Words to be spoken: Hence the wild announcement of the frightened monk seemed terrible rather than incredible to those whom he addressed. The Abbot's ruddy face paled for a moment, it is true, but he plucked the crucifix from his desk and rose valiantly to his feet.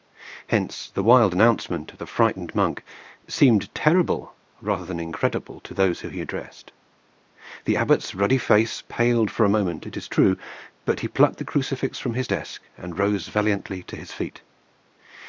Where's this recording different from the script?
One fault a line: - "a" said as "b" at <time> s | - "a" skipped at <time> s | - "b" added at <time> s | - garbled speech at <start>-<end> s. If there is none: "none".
none